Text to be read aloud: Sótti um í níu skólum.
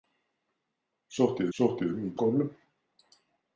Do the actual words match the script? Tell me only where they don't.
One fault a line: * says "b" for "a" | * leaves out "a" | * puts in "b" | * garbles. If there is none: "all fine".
* puts in "sótti"
* leaves out "níu"